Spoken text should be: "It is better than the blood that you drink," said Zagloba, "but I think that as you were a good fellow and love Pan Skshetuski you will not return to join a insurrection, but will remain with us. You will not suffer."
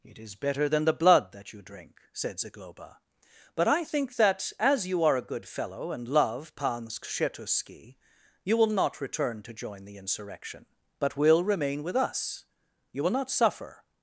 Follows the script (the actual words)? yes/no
no